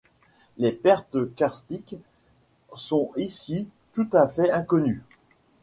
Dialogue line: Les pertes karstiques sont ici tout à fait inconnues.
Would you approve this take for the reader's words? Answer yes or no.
yes